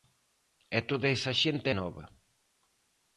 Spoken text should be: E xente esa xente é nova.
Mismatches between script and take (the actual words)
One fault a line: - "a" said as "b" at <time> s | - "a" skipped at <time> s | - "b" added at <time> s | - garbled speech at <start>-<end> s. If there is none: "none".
- "xente" said as "toda" at 0.9 s